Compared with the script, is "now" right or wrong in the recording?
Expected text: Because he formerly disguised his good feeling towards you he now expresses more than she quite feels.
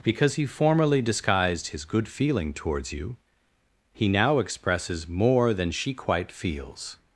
right